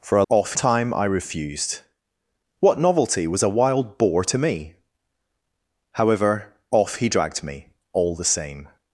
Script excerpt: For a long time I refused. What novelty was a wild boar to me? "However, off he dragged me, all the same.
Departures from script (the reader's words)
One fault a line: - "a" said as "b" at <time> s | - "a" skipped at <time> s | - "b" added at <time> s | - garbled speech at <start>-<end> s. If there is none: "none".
- "long" said as "off" at 0.3 s